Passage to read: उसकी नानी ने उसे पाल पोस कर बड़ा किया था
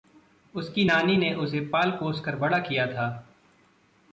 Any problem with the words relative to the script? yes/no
no